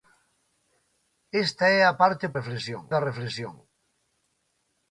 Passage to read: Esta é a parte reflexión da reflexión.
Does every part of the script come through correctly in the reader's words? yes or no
yes